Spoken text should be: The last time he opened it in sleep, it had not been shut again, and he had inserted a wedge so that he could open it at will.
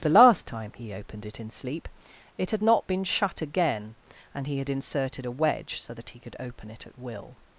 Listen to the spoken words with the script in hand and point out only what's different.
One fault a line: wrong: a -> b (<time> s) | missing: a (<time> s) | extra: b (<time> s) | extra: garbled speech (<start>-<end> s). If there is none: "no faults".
no faults